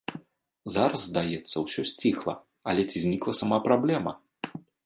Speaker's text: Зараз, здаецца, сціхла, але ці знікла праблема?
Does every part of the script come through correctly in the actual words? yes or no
no